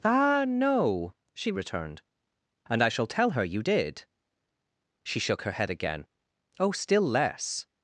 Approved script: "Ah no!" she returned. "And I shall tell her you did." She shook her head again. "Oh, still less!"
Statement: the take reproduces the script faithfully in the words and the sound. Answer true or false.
true